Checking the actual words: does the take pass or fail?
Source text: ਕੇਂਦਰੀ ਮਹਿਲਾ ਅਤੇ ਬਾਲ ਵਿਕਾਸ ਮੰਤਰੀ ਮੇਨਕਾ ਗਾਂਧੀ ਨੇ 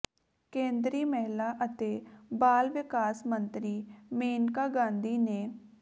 pass